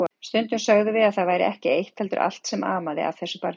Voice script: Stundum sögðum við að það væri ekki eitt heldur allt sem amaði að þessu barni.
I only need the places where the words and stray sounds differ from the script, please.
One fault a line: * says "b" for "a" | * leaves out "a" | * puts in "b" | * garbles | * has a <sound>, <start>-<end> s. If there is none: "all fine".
all fine